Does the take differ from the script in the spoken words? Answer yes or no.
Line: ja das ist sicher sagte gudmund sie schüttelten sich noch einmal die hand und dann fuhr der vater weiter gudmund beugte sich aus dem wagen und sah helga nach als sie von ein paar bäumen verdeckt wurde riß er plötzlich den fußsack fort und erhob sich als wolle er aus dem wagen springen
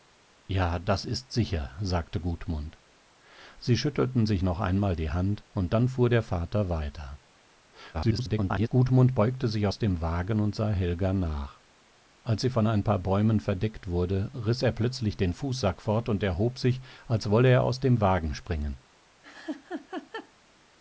yes